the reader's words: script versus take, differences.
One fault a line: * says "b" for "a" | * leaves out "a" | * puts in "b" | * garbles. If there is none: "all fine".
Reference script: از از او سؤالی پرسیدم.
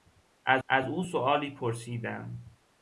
all fine